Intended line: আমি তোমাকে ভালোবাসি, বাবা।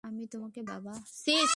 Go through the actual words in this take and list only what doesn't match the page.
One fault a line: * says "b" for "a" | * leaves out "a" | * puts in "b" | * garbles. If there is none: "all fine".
* leaves out "ভালোবাসি"